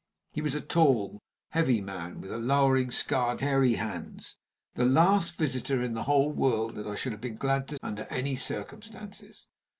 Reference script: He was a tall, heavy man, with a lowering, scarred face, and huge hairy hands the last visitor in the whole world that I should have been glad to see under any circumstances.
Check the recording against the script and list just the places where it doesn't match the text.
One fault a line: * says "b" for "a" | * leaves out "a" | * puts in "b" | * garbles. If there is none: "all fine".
* leaves out "face and huge"
* leaves out "see"